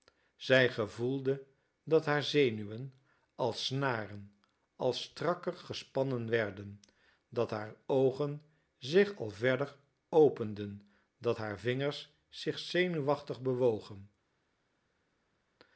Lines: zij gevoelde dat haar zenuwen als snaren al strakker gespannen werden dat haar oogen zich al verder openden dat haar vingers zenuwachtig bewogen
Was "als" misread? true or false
false